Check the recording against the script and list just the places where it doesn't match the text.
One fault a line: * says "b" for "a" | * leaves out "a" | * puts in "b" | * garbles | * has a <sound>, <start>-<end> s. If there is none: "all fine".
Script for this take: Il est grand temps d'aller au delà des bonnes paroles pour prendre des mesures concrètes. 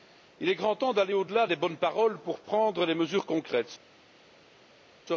all fine